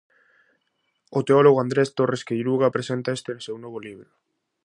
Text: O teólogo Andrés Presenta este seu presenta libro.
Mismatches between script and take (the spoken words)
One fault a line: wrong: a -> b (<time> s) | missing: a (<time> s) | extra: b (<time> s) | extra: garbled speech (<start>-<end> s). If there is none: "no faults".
extra: Torres Queiruga (2.0 s)
wrong: presenta -> novo (3.6 s)